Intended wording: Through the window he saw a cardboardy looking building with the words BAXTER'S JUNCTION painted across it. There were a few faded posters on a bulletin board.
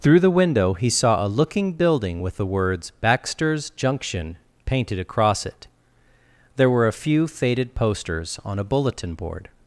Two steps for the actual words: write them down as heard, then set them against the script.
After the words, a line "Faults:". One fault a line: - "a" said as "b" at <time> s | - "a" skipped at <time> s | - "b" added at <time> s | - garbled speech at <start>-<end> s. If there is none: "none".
Through the window he saw a looking building with the words BAXTER'S JUNCTION painted across it. There were a few faded posters on a bulletin board.
Faults:
- "cardboardy" skipped at 1.3 s